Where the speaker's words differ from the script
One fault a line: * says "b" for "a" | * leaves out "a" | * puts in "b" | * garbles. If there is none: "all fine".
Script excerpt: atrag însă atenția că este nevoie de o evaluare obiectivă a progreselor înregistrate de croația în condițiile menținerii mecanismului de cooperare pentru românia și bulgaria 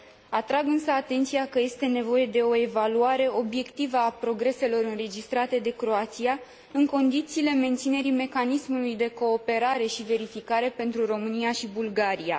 * puts in "și verificare"